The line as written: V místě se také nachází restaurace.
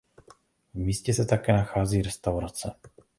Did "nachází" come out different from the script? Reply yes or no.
no